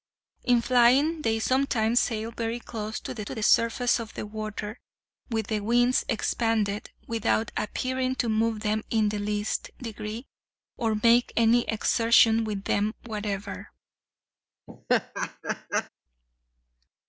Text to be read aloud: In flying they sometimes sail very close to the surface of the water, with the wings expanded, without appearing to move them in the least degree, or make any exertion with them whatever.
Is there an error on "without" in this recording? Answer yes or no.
no